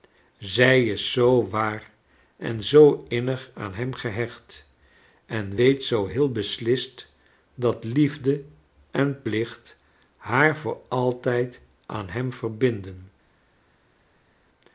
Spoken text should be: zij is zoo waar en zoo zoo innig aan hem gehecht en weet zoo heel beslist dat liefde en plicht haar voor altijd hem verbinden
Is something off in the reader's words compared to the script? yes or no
yes